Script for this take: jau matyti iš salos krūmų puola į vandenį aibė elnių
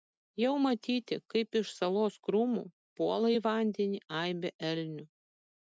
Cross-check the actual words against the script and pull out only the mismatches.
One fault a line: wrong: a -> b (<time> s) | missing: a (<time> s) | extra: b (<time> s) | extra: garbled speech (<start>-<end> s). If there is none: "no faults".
extra: kaip (1.3 s)